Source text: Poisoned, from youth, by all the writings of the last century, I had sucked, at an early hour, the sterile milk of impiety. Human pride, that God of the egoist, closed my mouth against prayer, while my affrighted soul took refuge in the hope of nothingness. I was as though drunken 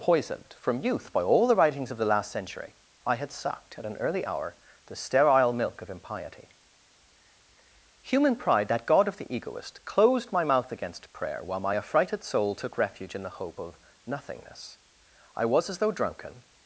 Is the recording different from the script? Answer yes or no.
no